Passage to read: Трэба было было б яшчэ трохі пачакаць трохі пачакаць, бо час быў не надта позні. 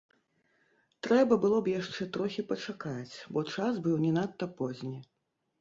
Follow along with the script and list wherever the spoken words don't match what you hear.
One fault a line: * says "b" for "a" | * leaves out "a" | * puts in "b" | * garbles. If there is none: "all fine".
* leaves out "было"
* leaves out "трохі пачакаць"